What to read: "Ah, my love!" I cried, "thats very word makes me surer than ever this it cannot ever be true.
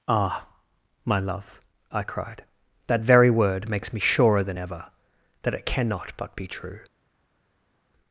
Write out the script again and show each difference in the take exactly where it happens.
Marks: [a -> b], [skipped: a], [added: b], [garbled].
"Ah, my love!" I cried, ["thats -> that] very word makes me surer than ever [this -> that] it cannot [ever -> but] be true.